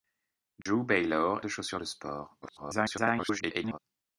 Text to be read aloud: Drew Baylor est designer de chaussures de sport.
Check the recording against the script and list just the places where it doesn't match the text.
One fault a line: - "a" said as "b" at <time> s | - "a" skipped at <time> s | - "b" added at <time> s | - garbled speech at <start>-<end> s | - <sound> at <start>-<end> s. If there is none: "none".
- dropout at 0.6-0.7 s
- "est designer" skipped at 1.4 s
- garbled speech at 2.4-3.8 s